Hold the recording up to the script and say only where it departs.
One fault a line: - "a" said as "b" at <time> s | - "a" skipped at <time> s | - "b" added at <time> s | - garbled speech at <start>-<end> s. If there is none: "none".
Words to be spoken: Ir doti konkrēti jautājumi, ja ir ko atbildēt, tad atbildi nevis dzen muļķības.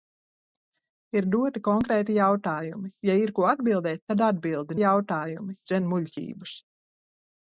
- "nevis" said as "jautājumi" at 4.8 s